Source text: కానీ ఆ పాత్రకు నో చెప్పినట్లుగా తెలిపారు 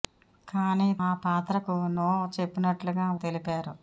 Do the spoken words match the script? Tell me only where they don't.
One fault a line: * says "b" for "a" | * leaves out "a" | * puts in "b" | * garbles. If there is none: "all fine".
all fine